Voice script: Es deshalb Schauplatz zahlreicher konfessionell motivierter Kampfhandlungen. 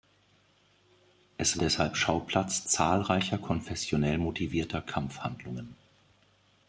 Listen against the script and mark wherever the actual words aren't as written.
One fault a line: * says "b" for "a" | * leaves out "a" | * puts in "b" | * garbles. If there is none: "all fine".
all fine